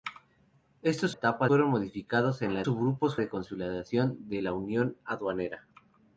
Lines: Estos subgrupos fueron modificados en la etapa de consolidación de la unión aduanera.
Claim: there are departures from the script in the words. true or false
true